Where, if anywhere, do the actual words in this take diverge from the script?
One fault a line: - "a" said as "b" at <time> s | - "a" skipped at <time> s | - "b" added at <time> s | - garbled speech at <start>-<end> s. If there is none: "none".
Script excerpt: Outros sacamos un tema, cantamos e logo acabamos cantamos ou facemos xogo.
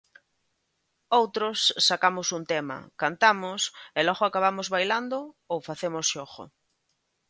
- "cantamos" said as "bailando" at 4.8 s